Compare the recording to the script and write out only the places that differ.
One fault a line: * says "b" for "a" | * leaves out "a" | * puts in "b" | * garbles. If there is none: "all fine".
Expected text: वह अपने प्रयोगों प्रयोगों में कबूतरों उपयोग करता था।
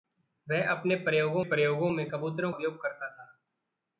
all fine